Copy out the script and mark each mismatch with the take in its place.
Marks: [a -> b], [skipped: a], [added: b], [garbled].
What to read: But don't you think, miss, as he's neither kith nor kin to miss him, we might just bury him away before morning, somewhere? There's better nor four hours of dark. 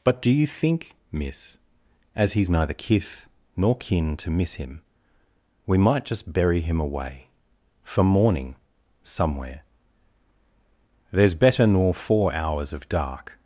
But [don't -> do] you think, miss, as he's neither kith nor kin to miss him, we might just bury him away [before -> for] morning, somewhere? There's better nor four hours of dark.